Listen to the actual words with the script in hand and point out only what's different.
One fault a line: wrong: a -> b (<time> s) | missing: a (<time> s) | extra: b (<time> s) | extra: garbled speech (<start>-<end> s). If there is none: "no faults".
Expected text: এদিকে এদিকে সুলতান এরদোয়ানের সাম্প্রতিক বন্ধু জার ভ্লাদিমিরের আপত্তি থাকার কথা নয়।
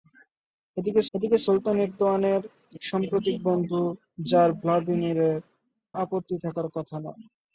no faults